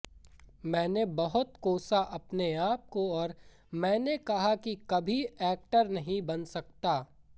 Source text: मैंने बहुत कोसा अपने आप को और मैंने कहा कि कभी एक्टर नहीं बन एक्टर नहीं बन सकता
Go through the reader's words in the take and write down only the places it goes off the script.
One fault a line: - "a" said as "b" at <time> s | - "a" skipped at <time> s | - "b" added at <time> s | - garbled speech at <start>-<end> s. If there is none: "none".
- "एक्टर नहीं बन" skipped at 6.4 s